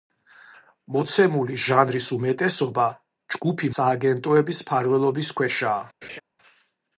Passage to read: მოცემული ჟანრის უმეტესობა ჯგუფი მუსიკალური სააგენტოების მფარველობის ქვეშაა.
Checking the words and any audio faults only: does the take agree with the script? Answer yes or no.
no